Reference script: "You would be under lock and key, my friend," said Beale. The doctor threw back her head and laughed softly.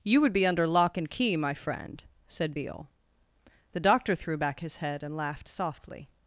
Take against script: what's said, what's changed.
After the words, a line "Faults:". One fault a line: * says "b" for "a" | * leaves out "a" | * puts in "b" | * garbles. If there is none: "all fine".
"You would be under lock and key, my friend," said Beale. The doctor threw back his head and laughed softly.
Faults:
* says "his" for "her"